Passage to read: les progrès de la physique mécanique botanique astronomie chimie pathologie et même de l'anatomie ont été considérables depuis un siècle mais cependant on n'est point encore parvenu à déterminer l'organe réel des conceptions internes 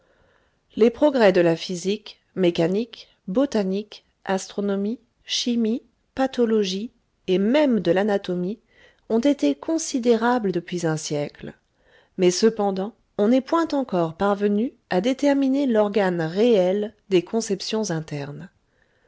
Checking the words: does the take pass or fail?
pass